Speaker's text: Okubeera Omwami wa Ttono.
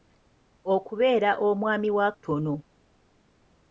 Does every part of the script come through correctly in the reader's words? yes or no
yes